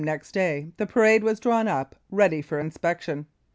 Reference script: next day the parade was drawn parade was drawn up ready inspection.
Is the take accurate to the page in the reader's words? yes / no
no